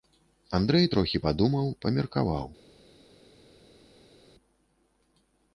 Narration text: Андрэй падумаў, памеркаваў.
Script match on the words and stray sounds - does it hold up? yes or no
no